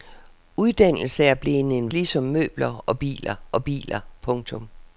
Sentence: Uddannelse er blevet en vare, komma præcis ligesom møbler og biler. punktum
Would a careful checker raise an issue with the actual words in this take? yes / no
yes